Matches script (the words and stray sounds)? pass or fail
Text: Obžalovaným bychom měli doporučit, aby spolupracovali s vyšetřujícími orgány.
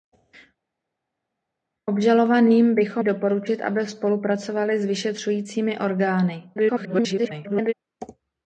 fail